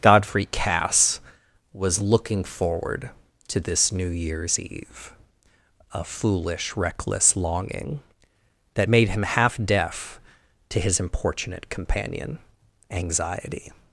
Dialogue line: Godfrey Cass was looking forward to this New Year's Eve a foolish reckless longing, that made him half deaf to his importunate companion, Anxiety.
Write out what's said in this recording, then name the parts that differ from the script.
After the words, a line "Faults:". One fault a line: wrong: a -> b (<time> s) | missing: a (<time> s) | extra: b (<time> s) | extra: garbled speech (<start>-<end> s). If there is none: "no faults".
Godfrey Cass was looking forward to this New Year's Eve a foolish reckless longing, that made him half deaf to his importunate companion, Anxiety.
Faults:
no faults